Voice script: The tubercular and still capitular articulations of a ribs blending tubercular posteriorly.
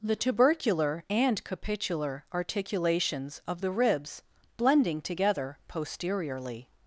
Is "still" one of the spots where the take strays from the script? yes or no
yes